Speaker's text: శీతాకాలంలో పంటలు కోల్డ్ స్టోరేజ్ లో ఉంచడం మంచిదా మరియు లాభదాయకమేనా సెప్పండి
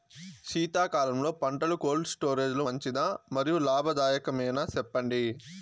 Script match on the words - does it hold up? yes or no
no